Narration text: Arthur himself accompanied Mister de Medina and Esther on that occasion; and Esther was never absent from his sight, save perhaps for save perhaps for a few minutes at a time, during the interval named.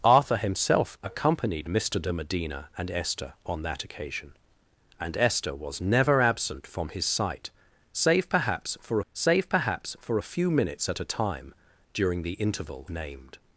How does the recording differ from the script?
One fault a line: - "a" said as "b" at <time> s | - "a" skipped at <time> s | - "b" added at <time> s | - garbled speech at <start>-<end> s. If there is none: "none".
none